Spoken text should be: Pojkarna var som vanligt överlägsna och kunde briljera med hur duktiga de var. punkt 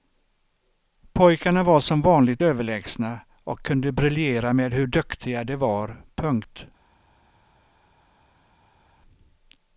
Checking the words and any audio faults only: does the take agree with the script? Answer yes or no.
yes